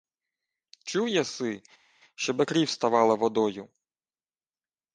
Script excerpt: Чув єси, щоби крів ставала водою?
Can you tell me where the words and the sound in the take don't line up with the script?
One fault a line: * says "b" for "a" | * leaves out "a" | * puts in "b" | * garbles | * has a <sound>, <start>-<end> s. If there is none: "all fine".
all fine